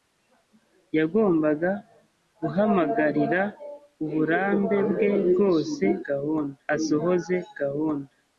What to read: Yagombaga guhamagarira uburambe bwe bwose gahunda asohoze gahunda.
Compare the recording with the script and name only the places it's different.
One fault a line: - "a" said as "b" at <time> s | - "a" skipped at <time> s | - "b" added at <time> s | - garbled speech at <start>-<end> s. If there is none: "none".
none